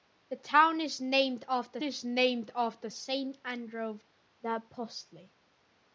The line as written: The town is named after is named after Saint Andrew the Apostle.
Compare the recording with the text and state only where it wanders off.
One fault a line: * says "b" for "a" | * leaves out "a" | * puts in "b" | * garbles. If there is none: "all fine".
all fine